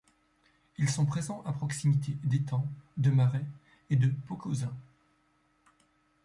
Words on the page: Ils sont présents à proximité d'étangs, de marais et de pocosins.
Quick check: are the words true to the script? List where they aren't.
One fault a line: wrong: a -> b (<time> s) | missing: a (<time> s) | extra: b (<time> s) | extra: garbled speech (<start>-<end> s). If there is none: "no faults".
no faults